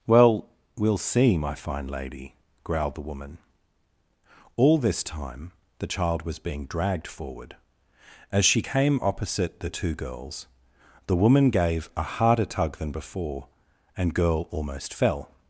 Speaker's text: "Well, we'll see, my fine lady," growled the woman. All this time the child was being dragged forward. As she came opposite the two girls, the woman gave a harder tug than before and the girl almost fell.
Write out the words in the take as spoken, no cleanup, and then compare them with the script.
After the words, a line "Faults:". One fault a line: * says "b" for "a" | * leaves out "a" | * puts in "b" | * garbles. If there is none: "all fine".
"Well, we'll see, my fine lady," growled the woman. All this time the child was being dragged forward. As she came opposite the two girls, the woman gave a harder tug than before and girl almost fell.
Faults:
* leaves out "the"